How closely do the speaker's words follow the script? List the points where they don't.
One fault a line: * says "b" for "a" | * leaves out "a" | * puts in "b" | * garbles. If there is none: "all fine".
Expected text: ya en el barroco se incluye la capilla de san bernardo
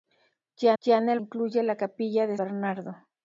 * puts in "ya"
* leaves out "barroco se"
* leaves out "san"